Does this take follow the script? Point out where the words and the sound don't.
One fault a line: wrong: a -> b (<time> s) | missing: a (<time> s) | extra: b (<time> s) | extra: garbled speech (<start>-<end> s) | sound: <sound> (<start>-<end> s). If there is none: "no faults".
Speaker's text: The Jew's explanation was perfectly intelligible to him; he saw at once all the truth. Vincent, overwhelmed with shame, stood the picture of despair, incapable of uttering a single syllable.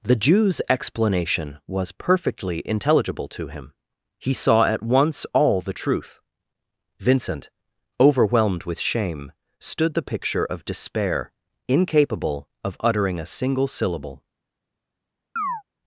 sound: chirp (15.4-15.6 s)